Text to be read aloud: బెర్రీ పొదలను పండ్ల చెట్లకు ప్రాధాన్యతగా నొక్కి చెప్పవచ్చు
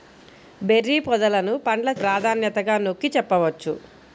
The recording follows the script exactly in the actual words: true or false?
false